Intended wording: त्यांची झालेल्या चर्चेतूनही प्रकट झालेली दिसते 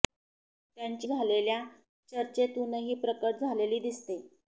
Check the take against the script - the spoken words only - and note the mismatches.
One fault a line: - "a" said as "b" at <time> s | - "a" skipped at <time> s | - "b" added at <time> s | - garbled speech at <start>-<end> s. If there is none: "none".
none